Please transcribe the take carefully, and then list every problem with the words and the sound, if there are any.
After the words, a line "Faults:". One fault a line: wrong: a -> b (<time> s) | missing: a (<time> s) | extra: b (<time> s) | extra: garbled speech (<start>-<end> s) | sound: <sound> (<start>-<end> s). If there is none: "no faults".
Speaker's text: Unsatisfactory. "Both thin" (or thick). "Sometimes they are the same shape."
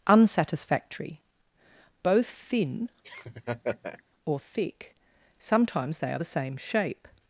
Unsatisfactory. "Both thin" (or thick). "Sometimes they are the same shape."
Faults:
sound: laugh (3.0-4.0 s)